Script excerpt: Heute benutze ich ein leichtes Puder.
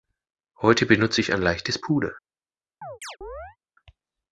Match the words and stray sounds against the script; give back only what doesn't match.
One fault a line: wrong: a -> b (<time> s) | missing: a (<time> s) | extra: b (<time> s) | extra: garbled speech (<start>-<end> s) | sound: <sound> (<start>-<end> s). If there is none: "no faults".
sound: chirp (2.8-3.6 s)